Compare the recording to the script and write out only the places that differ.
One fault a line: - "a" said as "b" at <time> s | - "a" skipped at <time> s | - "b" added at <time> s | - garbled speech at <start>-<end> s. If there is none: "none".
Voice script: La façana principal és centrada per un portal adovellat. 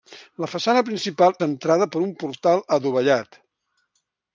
- "és" skipped at 1.4 s